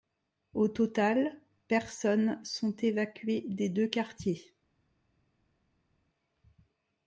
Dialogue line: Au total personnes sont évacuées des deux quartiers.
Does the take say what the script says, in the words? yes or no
yes